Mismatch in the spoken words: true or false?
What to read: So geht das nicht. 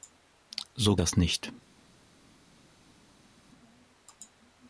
true